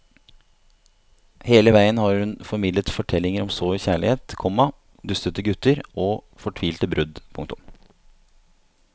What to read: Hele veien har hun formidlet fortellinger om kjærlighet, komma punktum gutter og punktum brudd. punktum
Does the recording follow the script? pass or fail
fail